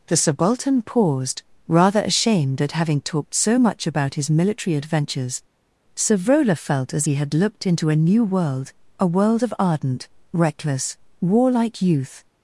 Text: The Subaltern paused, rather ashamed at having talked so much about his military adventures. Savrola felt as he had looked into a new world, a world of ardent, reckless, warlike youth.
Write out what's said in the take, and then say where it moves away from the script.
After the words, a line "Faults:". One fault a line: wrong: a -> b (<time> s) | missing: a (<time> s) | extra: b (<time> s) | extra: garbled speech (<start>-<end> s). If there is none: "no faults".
The Subaltern paused, rather ashamed at having talked so much about his military adventures. Savrola felt as he had looked into a new world, a world of ardent, reckless, warlike youth.
Faults:
no faults